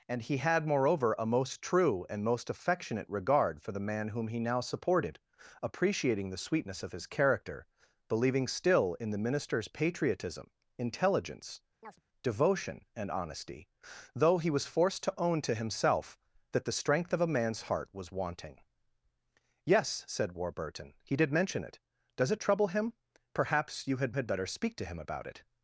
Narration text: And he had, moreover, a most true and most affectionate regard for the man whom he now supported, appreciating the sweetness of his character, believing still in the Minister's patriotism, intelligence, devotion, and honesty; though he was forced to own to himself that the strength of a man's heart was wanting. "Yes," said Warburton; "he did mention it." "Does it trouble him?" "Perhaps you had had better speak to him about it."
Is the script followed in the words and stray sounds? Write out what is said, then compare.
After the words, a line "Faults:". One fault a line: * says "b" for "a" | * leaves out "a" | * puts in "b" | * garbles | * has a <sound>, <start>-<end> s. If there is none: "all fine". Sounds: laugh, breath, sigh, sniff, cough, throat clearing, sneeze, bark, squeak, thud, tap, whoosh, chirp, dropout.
And he had, moreover, a most true and most affectionate regard for the man whom he now supported, appreciating the sweetness of his character, believing still in the Minister's patriotism, intelligence, devotion, and honesty; though he was forced to own to himself that the strength of a man's heart was wanting. "Yes," said Warburton; "he did mention it." "Does it trouble him?" "Perhaps you had had better speak to him about it."
Faults:
* has a chirp, 11.8-12.0 s